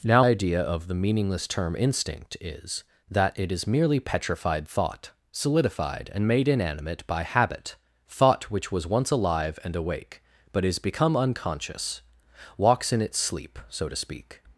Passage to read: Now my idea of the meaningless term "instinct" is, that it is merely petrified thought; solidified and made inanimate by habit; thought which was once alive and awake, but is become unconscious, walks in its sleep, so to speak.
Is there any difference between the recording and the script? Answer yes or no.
yes